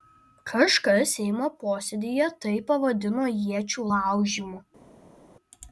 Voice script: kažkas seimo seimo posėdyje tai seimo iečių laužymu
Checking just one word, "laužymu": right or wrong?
right